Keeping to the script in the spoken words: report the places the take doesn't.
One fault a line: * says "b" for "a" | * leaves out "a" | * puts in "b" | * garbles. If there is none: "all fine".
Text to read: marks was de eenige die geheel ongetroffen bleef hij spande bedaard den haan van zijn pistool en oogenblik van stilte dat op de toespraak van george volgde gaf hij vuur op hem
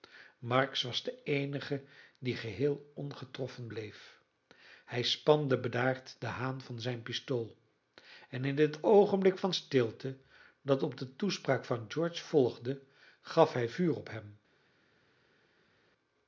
* puts in "in het"